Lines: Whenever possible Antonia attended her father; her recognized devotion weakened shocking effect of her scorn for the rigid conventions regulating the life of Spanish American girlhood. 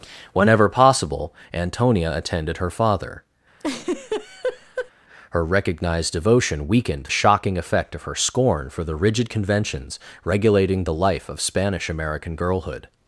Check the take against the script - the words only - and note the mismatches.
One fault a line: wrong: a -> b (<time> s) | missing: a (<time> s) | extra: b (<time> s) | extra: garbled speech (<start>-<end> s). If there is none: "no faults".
no faults